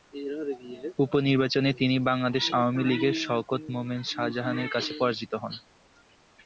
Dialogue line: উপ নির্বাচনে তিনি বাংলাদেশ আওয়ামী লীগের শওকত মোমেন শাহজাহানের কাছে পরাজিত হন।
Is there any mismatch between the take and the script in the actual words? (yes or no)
no